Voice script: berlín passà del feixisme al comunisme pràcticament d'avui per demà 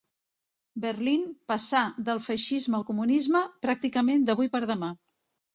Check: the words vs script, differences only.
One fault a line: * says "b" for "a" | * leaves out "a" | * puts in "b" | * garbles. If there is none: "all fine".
all fine